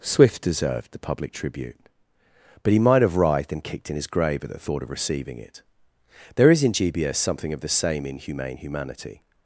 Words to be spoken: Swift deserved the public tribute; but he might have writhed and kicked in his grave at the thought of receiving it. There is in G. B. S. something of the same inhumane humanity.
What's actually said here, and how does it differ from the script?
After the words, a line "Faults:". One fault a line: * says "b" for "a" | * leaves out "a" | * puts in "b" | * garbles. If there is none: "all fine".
Swift deserved the public tribute; but he might have writhed and kicked in his grave at the thought of receiving it. There is in G. B. S. something of the same inhumane humanity.
Faults:
all fine